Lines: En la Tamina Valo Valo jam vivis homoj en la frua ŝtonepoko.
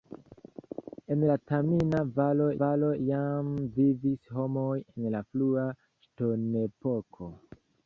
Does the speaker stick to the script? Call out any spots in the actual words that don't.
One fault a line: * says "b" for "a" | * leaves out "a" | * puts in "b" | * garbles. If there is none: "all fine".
all fine